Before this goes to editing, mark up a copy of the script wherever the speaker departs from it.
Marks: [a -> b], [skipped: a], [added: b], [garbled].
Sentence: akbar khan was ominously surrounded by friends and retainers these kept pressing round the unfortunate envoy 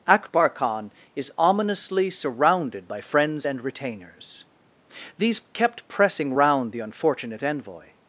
akbar khan [was -> is] ominously surrounded by friends and retainers these kept pressing round the unfortunate envoy